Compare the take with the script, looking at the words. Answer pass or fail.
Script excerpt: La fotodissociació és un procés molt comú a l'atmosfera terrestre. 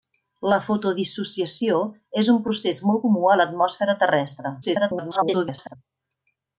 fail